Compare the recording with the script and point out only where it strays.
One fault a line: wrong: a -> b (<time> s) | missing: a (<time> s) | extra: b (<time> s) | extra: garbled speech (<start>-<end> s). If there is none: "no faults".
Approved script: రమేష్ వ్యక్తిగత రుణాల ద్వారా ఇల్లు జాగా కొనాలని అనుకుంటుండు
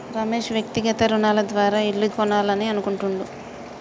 missing: జాగా (2.1 s)